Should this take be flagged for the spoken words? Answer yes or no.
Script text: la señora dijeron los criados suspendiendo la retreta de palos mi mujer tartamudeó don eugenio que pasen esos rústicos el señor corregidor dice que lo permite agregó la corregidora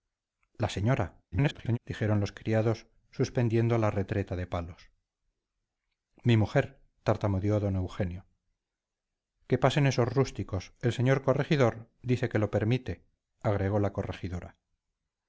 yes